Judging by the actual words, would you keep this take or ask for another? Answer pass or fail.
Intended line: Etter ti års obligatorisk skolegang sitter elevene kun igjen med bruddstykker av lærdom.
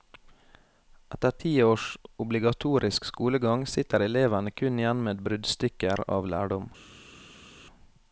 pass